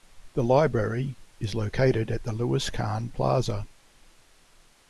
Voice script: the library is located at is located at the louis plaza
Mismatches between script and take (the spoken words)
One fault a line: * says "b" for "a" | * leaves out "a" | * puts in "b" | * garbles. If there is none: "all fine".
* leaves out "is located at"
* puts in "kahn"